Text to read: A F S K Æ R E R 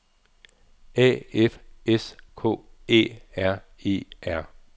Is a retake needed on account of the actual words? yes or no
no